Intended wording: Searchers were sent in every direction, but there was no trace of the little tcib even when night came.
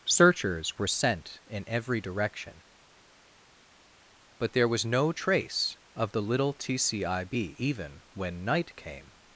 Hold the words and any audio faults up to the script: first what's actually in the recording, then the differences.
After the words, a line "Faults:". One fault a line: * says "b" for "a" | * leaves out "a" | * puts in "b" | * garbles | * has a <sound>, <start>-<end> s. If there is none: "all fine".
Searchers were sent in every direction, but there was no trace of the little tcib even when night came.
Faults:
all fine